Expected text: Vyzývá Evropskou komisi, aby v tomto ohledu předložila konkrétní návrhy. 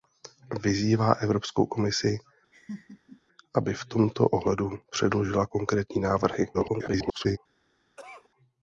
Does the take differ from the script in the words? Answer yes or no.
yes